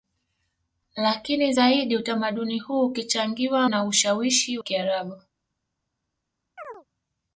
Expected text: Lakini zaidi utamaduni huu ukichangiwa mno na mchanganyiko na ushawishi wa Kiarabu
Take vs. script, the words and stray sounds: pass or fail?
fail